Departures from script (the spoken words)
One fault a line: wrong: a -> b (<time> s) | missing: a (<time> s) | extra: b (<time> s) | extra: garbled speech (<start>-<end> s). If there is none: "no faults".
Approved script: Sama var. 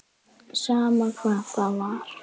extra: hvað það (1.2 s)